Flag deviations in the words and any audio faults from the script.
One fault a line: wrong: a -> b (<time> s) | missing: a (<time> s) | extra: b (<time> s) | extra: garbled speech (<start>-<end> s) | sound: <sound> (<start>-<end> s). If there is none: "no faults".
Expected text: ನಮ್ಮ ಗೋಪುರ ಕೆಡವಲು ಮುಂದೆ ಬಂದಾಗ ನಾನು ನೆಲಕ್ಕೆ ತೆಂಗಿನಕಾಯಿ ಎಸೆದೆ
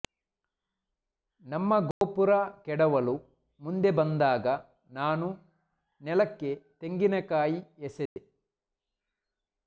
sound: dropout (1.9-2.0 s)
sound: dropout (8.1-8.2 s)